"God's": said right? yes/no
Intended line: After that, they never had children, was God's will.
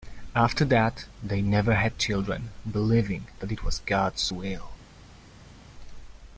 yes